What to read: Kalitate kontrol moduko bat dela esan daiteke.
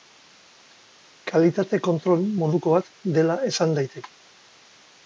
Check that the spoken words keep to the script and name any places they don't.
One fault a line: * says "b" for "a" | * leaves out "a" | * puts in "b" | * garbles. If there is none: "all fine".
all fine